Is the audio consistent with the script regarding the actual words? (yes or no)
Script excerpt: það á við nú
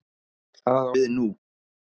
yes